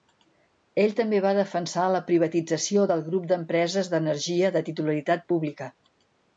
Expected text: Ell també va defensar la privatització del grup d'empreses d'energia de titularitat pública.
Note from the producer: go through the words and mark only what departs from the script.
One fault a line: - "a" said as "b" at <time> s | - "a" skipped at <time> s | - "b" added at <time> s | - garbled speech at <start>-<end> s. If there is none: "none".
none